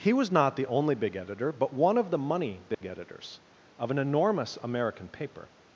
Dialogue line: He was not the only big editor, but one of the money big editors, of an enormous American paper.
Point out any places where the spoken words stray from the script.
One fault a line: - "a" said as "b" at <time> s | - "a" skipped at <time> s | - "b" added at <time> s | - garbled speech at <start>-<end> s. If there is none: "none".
none